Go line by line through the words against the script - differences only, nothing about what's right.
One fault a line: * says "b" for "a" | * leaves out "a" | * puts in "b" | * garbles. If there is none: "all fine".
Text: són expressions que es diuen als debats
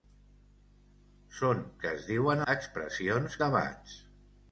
* leaves out "expressions"
* says "expressions" for "als"